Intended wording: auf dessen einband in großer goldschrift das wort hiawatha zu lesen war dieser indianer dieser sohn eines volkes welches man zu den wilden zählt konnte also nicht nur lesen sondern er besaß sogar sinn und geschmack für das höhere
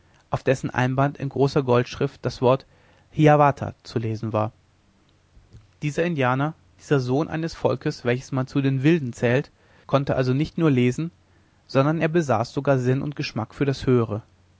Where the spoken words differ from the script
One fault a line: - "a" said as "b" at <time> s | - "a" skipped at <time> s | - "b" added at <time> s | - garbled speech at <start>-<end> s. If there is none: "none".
none